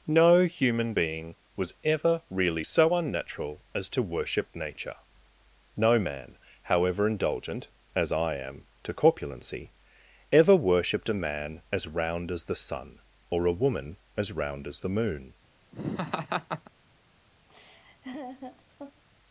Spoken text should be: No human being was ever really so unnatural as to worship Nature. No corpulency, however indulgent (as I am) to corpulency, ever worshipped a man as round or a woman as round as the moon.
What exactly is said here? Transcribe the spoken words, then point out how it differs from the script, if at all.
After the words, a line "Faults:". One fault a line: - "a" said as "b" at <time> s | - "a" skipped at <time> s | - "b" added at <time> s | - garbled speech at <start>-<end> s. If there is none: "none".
No human being was ever really so unnatural as to worship Nature. No man, however indulgent (as I am) to corpulency, ever worshipped a man as round as the sun or a woman as round as the moon.
Faults:
- "corpulency" said as "man" at 6.0 s
- "as the sun" added at 12.3 s